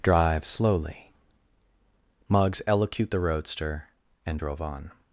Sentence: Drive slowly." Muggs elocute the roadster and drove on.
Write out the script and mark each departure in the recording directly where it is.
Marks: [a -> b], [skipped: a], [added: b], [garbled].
Drive slowly." Muggs elocute the roadster and drove on.